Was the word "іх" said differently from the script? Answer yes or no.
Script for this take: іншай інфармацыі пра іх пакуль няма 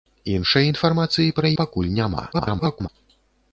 yes